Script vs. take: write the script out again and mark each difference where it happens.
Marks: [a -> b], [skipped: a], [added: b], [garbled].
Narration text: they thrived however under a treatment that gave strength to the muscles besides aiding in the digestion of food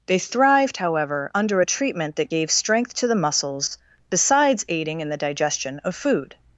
they thrived however under a treatment that gave strength to the muscles besides aiding in the digestion of food